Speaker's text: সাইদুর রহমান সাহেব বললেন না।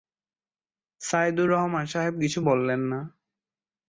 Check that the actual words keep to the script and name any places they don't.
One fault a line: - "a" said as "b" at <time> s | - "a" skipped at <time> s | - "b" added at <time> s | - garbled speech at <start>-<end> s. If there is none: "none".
- "কিছু" added at 2.2 s